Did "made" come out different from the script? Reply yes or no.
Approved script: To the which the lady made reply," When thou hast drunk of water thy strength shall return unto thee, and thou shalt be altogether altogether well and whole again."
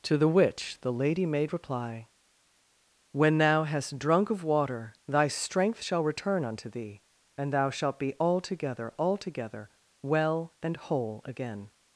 no